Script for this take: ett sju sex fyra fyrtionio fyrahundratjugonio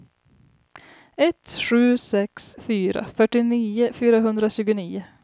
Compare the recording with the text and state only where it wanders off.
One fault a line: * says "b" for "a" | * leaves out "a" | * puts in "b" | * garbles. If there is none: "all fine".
all fine